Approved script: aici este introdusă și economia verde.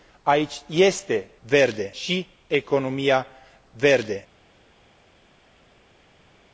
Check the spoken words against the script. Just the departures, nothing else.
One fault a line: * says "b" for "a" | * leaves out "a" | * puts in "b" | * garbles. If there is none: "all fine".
* says "verde" for "introdusă"